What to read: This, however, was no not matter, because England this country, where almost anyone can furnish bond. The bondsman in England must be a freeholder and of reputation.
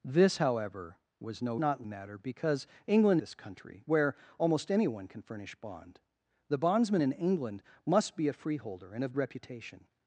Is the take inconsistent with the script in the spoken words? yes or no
no